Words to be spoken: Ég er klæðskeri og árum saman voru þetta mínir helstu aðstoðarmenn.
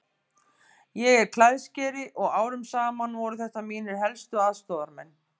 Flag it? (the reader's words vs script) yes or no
no